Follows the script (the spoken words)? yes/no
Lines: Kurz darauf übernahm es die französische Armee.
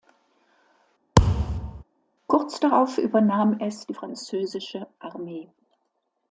yes